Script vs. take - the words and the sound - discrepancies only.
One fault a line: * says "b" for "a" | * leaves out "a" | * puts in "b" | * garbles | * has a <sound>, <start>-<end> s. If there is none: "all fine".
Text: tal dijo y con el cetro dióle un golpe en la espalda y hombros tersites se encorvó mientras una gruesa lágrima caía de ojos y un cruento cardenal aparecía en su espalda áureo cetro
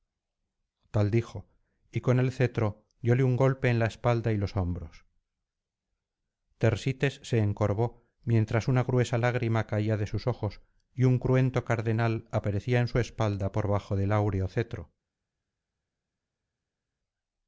* puts in "los"
* puts in "sus"
* puts in "por bajo del"